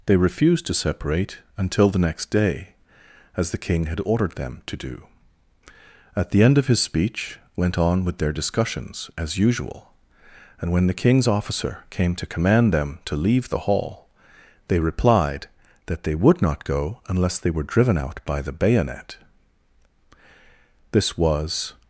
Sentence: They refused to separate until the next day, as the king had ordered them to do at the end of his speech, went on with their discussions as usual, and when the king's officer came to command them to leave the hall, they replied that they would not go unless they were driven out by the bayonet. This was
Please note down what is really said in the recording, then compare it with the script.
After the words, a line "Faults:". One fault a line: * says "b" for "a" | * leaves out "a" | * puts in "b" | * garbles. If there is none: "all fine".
They refused to separate until the next day, as the king had ordered them to do at the end of his speech, went on with their discussions as usual, and when the king's officer came to command them to leave the hall, they replied that they would not go unless they were driven out by the bayonet. This was
Faults:
all fine